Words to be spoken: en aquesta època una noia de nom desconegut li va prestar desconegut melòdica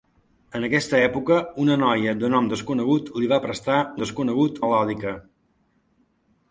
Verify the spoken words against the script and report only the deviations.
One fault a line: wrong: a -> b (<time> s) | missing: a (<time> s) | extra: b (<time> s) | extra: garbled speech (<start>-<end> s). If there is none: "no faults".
no faults